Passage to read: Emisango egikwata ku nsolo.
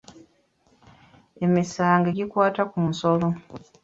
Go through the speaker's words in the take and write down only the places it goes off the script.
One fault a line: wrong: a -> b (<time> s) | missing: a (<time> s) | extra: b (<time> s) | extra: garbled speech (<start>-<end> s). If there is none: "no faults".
no faults